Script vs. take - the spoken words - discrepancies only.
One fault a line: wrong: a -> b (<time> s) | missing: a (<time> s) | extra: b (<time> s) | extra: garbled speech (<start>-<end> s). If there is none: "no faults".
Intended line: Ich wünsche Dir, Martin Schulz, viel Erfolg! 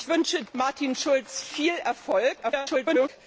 missing: Dir (0.4 s)
extra: garbled speech (2.4-3.1 s)